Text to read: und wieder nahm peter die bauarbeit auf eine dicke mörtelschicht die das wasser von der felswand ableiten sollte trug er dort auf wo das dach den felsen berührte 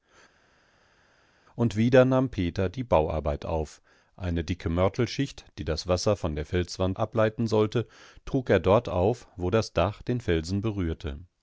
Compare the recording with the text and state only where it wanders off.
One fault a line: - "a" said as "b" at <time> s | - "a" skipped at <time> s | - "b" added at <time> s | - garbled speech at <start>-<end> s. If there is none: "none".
none